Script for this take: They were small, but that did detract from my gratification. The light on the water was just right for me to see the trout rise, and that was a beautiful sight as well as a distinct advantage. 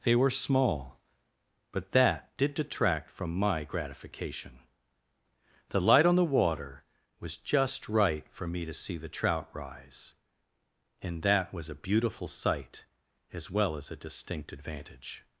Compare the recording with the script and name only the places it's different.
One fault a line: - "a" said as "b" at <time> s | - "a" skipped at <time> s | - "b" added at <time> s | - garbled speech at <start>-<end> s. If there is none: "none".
none